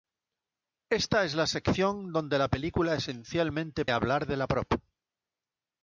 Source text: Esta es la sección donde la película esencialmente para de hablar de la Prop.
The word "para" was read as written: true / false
false